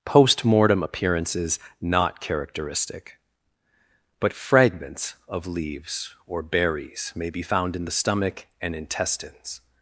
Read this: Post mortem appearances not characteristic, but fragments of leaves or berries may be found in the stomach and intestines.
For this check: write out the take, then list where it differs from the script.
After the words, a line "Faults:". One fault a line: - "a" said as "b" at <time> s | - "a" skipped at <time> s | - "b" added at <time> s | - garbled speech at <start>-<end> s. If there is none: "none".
Post mortem appearances not characteristic, but fragments of leaves or berries may be found in the stomach and intestines.
Faults:
none